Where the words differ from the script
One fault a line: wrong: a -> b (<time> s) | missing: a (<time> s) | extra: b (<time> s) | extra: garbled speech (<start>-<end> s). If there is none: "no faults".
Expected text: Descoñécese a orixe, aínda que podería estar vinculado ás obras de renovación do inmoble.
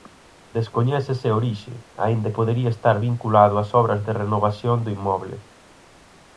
missing: que (2.3 s)